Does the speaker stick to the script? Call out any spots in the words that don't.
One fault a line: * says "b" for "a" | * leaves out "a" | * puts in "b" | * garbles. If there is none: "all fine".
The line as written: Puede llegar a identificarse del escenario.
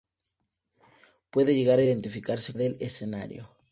all fine